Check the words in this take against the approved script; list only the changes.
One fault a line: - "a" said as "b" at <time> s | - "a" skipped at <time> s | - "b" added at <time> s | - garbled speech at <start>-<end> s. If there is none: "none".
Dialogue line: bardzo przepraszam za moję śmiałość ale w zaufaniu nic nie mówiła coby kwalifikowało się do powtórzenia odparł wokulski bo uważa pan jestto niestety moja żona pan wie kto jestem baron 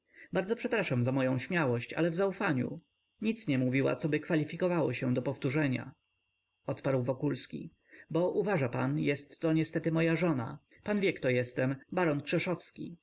none